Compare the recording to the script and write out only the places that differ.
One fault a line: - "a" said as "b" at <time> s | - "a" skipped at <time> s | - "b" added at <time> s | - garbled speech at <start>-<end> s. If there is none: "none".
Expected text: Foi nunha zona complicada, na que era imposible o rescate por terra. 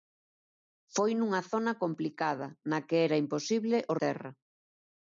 - "rescate por" skipped at 3.9 s